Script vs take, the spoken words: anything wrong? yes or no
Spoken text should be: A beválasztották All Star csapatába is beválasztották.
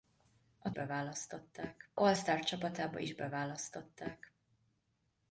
no